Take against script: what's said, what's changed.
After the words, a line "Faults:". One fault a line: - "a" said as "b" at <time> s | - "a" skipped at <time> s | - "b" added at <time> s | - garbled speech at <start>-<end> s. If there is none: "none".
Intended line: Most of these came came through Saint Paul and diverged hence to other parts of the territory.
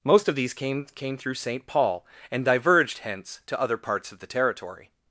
Most of these came came through Saint Paul and diverged hence to other parts of the territory.
Faults:
none